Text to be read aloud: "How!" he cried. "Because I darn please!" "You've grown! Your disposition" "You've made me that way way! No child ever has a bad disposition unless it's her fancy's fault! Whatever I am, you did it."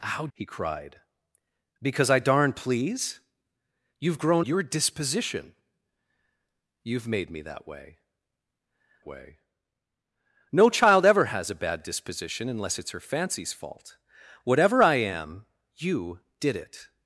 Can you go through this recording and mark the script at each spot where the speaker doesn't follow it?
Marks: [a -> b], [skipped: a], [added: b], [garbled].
"How!" he cried. "Because I darn please!" "You've grown! Your disposition" "You've made me that way way! No child ever has a bad disposition unless it's her fancy's fault! Whatever I am, you did it."